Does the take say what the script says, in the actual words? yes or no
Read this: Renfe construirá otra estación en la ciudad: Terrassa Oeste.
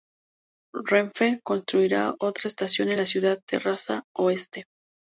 yes